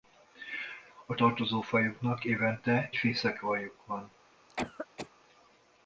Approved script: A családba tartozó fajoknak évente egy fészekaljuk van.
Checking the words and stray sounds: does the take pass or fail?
fail